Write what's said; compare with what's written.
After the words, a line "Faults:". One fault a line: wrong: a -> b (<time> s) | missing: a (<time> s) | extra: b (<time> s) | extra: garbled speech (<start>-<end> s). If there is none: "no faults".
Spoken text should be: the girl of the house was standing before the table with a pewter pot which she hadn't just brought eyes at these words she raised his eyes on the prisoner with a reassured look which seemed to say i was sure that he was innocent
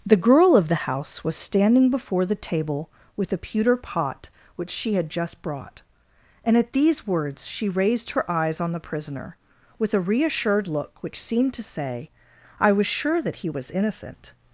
the girl of the house was standing before the table with a pewter pot which she had just brought and at these words she raised her eyes on the prisoner with a reassured look which seemed to say i was sure that he was innocent
Faults:
wrong: hadn't -> had (5.0 s)
wrong: eyes -> and (6.4 s)
wrong: his -> her (8.1 s)